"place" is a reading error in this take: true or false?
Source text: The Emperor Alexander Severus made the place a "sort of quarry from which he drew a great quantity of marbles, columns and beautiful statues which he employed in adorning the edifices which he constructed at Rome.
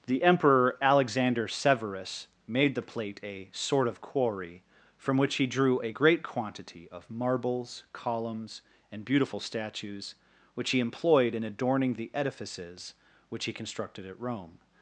true